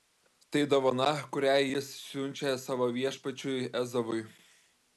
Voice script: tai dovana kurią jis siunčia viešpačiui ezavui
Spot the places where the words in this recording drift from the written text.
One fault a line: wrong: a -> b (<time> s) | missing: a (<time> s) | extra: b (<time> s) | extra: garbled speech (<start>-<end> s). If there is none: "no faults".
extra: savo (2.7 s)